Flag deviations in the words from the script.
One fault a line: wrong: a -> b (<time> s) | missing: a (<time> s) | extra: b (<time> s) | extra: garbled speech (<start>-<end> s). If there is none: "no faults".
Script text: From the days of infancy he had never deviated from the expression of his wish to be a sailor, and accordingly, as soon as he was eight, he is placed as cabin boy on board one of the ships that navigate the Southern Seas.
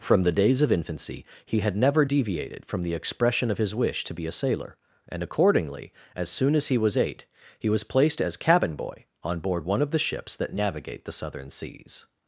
wrong: is -> was (7.7 s)